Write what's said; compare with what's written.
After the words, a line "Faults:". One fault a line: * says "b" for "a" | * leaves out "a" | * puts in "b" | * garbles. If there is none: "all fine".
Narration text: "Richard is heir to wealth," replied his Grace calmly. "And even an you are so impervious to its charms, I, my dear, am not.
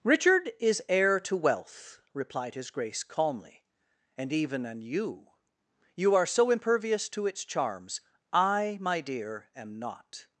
"Richard is heir to wealth," replied his Grace calmly. "And even an you you are so impervious to its charms, I, my dear, am not.
Faults:
* puts in "you"